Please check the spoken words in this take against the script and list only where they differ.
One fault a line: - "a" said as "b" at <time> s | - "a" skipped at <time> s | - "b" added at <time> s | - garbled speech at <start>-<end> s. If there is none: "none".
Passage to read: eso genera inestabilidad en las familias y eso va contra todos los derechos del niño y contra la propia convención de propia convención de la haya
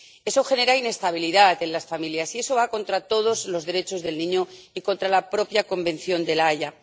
- "propia convención de" skipped at 6.4 s